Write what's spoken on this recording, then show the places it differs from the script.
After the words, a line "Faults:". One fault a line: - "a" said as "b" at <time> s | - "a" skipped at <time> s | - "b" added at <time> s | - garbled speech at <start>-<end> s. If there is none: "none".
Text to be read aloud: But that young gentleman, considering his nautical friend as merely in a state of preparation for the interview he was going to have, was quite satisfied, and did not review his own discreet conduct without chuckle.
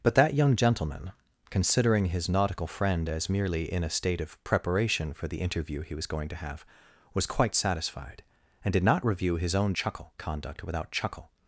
But that young gentleman, considering his nautical friend as merely in a state of preparation for the interview he was going to have, was quite satisfied, and did not review his own chuckle conduct without chuckle.
Faults:
- "discreet" said as "chuckle" at 9.7 s